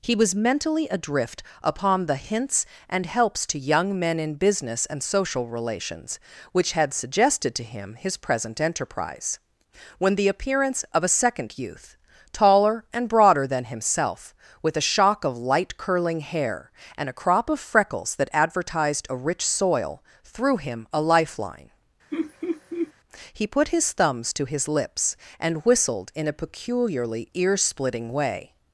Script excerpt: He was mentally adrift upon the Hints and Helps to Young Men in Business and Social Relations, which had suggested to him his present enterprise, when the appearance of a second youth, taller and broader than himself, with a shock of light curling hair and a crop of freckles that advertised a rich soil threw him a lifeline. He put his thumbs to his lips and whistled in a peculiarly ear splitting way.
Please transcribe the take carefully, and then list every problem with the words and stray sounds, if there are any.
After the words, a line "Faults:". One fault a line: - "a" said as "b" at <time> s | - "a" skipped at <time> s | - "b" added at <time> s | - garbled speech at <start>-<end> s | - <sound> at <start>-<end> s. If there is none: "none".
He was mentally adrift upon the Hints and Helps to Young Men in Business and Social Relations, which had suggested to him his present enterprise, when the appearance of a second youth, taller and broader than himself, with a shock of light curling hair and a crop of freckles that advertised a rich soil threw him a lifeline. He put his thumbs to his lips and whistled in a peculiarly ear splitting way.
Faults:
- laugh at 22.1-22.9 s